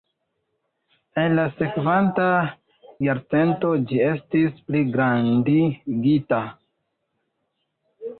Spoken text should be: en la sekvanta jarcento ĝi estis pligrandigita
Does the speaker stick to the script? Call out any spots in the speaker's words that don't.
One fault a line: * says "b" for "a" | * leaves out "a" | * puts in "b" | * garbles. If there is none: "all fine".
all fine